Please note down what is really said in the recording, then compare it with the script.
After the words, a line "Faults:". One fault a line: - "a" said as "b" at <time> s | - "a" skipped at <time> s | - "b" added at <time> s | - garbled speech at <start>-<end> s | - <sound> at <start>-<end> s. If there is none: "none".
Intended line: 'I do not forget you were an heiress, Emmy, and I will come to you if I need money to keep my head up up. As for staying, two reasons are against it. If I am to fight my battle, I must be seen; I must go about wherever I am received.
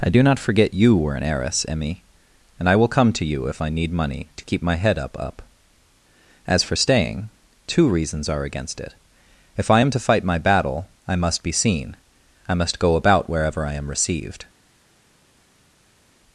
'I do not forget you were an heiress, Emmy, and I will come to you if I need money to keep my head up up. As for staying, two reasons are against it. If I am to fight my battle, I must be seen; I must go about wherever I am received.
Faults:
none